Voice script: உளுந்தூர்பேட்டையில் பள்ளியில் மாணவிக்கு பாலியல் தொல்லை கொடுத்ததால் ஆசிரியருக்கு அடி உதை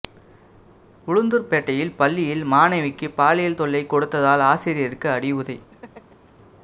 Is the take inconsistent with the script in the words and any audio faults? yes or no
yes